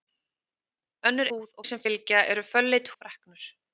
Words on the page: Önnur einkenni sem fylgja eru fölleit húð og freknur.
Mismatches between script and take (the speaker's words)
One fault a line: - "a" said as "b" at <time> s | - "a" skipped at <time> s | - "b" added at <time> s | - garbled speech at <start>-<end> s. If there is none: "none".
- "einkenni" said as "húð" at 1.3 s
- "húð" skipped at 2.9 s